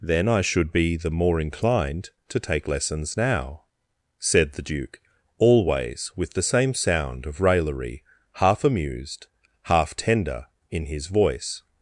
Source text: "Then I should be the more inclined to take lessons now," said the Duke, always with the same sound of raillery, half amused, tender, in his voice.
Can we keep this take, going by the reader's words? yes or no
no